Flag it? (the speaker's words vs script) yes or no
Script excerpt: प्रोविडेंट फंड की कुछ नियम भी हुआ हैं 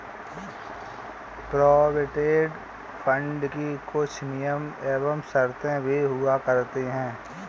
yes